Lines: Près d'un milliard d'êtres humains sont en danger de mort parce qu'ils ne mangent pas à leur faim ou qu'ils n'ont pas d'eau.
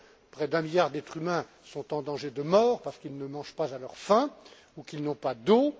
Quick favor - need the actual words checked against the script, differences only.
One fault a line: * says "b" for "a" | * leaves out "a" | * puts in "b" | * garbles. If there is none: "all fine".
all fine